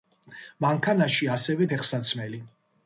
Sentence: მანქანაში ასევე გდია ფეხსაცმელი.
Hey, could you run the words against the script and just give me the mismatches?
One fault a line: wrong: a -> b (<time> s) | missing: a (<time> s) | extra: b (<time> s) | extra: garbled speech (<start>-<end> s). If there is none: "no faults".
missing: გდია (1.7 s)